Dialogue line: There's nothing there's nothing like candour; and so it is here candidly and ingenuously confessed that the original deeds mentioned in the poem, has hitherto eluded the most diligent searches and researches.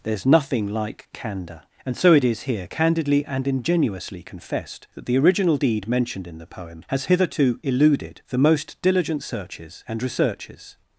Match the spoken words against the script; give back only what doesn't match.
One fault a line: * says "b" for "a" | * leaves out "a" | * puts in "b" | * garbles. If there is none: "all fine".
* leaves out "there's nothing"
* says "deed" for "deeds"